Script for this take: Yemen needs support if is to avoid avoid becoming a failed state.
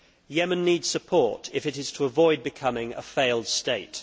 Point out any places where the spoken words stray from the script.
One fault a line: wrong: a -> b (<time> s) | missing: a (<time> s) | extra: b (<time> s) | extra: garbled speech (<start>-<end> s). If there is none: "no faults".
extra: it (1.7 s)
missing: avoid (2.4 s)